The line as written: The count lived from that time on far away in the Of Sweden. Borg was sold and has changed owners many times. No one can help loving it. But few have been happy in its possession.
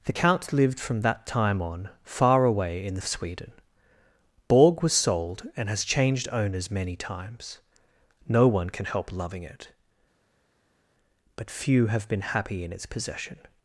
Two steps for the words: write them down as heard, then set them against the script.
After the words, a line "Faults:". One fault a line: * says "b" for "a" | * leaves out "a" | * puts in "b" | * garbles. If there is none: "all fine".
The count lived from that time on far away in the Of Sweden. Borg was sold and has changed owners many times. No one can help loving it. But few have been happy in its possession.
Faults:
all fine